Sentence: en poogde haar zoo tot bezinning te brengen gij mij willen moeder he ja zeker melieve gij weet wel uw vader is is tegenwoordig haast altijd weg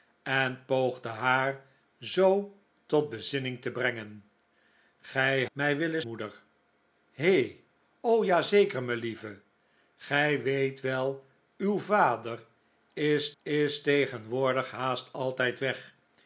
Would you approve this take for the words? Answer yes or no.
yes